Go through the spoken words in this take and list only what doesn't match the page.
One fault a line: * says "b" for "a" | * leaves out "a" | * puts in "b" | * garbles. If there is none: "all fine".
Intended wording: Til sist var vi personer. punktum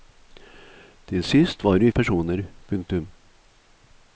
all fine